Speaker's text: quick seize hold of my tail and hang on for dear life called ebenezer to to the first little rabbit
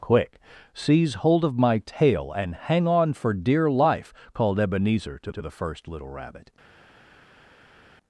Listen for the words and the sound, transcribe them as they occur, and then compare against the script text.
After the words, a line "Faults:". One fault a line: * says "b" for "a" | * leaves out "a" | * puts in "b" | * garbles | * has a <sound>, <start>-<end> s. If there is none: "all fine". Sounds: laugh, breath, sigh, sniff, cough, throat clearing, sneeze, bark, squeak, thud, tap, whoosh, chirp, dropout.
quick seize hold of my tail and hang on for dear life called ebenezer to to the first little rabbit
Faults:
all fine